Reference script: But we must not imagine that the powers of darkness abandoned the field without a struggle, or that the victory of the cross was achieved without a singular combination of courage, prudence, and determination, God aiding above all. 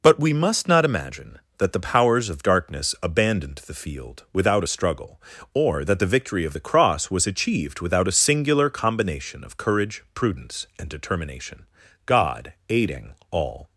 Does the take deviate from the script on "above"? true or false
true